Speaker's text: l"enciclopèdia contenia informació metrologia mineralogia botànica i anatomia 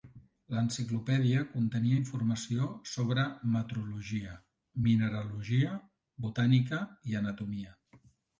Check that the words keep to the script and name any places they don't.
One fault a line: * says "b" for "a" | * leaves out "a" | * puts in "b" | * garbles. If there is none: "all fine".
* puts in "sobre"